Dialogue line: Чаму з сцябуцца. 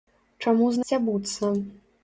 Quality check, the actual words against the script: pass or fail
pass